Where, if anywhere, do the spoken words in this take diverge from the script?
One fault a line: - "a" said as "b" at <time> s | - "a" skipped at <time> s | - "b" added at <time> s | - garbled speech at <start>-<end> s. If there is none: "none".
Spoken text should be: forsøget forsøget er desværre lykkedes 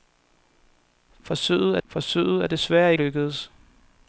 none